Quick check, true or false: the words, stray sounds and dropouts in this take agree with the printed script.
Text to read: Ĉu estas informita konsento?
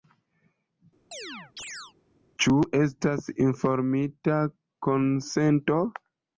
false